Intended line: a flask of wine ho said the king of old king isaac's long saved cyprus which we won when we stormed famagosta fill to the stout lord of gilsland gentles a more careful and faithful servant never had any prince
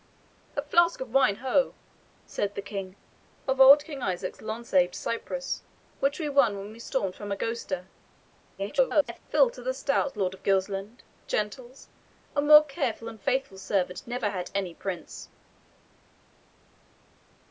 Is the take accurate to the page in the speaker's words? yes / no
no